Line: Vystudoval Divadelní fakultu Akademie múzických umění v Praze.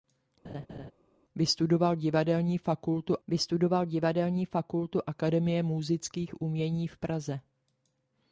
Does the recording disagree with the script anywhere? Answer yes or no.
yes